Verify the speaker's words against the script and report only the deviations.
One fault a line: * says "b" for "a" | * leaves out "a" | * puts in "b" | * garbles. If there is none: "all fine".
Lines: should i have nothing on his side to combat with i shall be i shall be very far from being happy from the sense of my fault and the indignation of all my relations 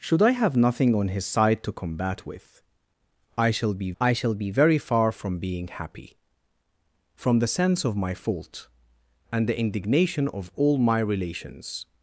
all fine